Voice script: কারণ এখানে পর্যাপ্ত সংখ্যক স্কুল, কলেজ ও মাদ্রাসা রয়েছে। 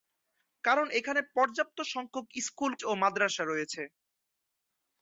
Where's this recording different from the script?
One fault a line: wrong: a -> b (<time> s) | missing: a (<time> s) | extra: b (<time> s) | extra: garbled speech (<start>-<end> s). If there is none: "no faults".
missing: কলেজ (2.7 s)